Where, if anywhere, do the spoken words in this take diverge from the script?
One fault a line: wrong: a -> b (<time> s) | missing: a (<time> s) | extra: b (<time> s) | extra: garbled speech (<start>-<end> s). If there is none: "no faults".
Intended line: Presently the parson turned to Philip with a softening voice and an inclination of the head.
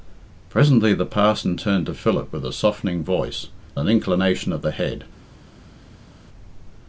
missing: and (3.5 s)